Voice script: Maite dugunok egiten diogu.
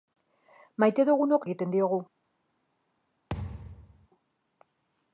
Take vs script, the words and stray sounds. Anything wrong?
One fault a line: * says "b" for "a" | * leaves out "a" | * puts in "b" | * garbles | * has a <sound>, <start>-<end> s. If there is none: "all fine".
* has a thud, 3.3-4.1 s